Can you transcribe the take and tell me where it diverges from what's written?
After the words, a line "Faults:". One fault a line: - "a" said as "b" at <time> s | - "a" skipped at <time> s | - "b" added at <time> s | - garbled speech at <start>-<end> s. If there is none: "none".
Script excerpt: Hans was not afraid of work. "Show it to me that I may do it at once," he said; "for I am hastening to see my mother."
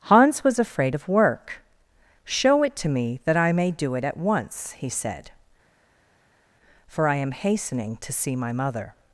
Hans was afraid of work. "Show it to me that I may do it at once," he said; "for I am hastening to see my mother."
Faults:
- "not" skipped at 0.6 s